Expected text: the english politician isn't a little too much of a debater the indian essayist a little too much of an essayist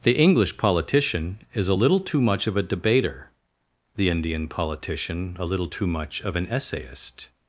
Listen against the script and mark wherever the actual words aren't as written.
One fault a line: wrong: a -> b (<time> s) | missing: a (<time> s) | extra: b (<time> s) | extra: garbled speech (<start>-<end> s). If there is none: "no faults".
wrong: isn't -> is (1.5 s)
wrong: essayist -> politician (4.5 s)